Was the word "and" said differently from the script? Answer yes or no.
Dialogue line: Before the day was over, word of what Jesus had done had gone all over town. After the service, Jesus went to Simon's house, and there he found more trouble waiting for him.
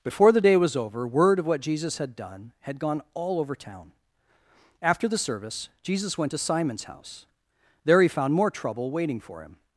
yes